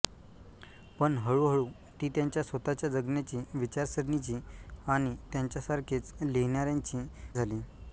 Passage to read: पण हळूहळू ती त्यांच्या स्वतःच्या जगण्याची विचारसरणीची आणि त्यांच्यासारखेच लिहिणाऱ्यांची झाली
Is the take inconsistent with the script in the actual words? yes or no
no